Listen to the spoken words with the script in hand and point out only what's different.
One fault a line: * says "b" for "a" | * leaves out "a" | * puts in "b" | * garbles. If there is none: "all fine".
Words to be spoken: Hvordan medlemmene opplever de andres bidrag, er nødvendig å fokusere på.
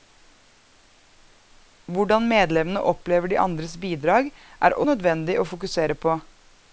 all fine